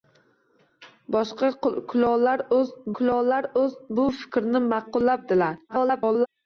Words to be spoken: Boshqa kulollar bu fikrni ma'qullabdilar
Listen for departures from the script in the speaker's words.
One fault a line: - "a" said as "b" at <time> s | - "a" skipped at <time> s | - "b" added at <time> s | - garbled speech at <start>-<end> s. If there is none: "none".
- "kulollar" added at 3.0 s
- garbled speech at 5.7-6.3 s